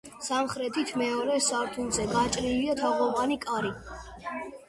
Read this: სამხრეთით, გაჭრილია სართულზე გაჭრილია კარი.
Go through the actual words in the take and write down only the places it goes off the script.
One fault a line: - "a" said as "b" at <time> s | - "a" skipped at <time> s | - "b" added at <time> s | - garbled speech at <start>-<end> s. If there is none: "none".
- "გაჭრილია" said as "მეორე" at 1.0 s
- "თაღოვანი" added at 2.8 s